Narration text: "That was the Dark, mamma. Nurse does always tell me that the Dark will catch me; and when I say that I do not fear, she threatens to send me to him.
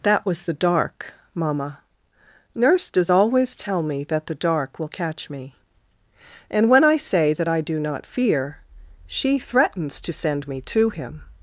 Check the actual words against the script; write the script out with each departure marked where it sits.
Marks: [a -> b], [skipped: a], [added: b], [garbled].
"That was the Dark, mamma. Nurse does always tell me that the Dark will catch me; and when I say that I do not fear, she threatens to send me to him.